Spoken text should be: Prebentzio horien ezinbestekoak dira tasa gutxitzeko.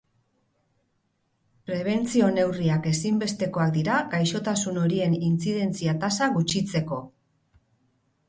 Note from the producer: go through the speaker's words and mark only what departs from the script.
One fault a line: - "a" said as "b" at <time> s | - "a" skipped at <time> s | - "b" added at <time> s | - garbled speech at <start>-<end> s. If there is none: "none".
- "horien" said as "neurriak" at 2.4 s
- "gaixotasun horien intzidentzia" added at 4.2 s